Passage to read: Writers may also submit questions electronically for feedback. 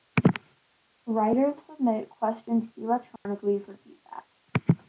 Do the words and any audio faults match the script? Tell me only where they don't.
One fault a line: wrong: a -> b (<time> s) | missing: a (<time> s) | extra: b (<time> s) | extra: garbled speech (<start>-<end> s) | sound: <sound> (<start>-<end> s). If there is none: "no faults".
missing: may also (1.6 s)
sound: dropout (3.2-3.3 s)